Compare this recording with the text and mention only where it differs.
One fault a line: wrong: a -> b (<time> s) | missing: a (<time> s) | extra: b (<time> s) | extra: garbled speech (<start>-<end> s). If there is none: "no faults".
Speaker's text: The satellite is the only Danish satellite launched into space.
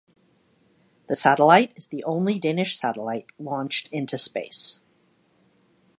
no faults